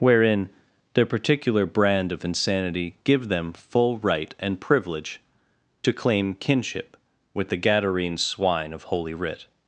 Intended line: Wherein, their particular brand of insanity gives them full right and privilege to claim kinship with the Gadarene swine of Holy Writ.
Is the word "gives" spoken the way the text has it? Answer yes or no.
no